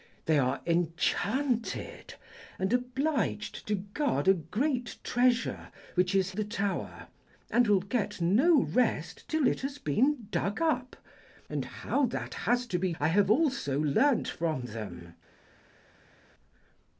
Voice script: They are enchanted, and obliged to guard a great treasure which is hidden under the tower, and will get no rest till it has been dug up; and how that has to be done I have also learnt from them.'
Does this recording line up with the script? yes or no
no